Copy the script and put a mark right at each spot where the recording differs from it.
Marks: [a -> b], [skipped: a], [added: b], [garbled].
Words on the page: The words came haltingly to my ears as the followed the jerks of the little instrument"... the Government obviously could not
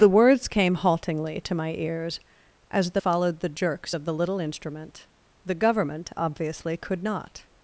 The words came haltingly to my ears as the followed the jerks of the little instrument"... the Government obviously could not